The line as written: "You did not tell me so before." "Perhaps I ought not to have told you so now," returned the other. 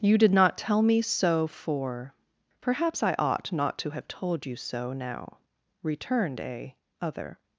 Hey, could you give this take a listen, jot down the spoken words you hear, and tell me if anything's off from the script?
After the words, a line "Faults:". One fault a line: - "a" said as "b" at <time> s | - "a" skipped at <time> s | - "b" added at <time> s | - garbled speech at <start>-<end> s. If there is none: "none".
"You did not tell me so for." "Perhaps I ought not to have told you so now," returned a other.
Faults:
- "before" said as "for" at 1.5 s
- "the" said as "a" at 6.4 s